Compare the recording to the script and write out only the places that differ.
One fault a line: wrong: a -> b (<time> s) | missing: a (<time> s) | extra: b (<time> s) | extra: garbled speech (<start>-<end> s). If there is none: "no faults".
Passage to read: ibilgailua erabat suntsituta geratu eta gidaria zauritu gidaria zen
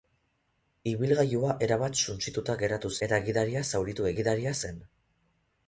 no faults